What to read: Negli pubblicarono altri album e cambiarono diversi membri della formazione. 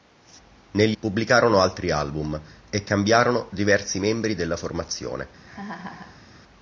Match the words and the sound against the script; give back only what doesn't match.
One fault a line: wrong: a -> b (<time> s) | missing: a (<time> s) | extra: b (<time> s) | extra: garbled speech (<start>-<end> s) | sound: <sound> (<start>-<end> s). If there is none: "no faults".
sound: laugh (5.4-6.2 s)